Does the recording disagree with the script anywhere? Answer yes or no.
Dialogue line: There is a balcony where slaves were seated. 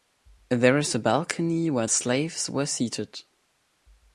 no